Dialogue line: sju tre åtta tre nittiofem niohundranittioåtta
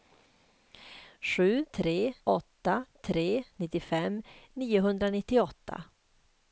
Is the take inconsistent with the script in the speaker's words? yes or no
no